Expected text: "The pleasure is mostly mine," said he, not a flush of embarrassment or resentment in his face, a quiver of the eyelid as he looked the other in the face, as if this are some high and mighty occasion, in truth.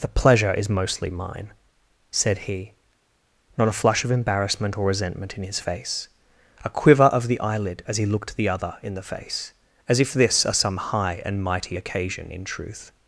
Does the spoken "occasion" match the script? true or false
true